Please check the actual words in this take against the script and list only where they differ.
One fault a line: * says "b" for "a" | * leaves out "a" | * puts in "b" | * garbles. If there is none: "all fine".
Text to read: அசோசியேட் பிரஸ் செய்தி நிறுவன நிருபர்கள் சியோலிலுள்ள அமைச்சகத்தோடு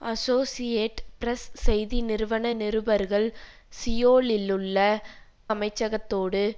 all fine